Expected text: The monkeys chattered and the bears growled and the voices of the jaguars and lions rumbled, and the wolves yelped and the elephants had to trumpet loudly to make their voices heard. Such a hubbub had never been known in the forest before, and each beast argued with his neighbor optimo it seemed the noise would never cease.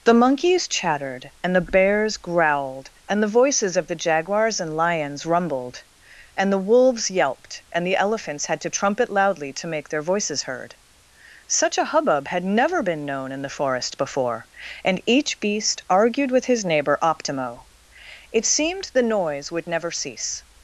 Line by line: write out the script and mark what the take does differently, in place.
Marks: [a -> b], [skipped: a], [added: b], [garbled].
The monkeys chattered and the bears growled and the voices of the jaguars and lions rumbled, and the wolves yelped and the elephants had to trumpet loudly to make their voices heard. Such a hubbub had never been known in the forest before, and each beast argued with his neighbor optimo it seemed the noise would never cease.